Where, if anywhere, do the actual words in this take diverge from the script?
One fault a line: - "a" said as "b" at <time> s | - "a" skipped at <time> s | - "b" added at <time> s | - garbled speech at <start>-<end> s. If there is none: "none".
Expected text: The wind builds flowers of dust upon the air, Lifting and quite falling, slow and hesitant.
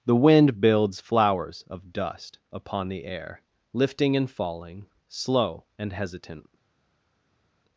- "quite" skipped at 4.3 s